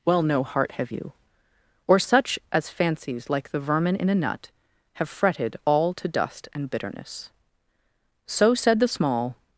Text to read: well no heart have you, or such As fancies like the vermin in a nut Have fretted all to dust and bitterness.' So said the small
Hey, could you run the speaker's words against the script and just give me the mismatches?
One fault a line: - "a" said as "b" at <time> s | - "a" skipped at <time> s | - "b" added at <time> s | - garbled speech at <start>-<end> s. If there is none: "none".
none